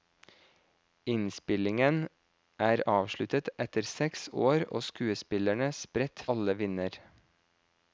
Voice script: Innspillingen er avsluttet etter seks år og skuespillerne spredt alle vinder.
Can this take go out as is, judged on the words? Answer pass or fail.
pass